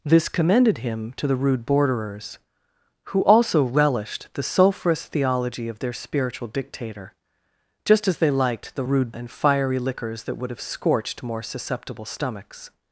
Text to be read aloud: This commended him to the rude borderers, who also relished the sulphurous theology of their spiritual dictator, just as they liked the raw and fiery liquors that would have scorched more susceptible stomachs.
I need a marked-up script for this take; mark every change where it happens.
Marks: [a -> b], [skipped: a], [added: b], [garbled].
This commended him to the rude borderers, who also relished the sulphurous theology of their spiritual dictator, just as they liked the [raw -> rude] and fiery liquors that would have scorched more susceptible stomachs.